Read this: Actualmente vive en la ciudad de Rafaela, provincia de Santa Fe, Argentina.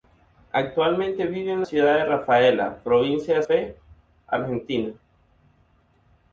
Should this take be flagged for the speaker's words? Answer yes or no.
yes